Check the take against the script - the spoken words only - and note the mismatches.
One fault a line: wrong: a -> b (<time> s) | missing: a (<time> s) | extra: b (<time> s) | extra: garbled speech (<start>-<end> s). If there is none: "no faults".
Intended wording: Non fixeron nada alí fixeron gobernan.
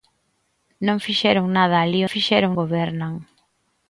no faults